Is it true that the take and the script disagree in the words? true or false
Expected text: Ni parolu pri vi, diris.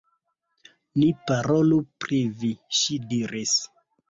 true